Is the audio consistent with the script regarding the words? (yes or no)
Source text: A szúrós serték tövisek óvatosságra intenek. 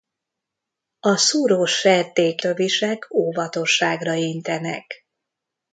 yes